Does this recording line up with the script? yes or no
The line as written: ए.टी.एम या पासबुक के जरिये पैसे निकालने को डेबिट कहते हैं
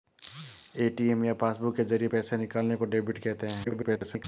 no